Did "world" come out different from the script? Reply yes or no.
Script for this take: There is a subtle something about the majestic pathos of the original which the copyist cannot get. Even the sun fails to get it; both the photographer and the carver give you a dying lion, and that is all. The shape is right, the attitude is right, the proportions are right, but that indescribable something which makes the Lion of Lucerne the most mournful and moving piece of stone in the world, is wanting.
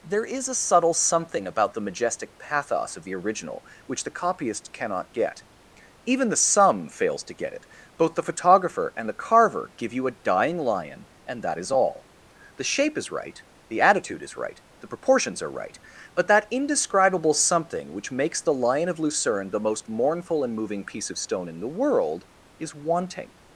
no